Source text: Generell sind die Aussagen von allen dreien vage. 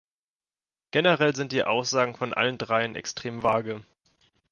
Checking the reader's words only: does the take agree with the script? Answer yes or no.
no